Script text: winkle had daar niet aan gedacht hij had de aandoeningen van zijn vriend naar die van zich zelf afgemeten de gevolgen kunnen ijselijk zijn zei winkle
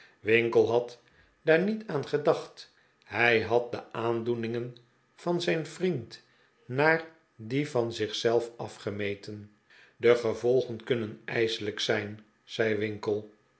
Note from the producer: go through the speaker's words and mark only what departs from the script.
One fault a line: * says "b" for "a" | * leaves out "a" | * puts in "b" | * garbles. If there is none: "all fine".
all fine